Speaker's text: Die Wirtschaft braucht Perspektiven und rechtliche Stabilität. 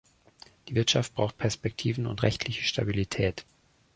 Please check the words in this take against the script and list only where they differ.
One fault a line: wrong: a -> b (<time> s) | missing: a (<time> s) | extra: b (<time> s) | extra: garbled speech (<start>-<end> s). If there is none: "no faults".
no faults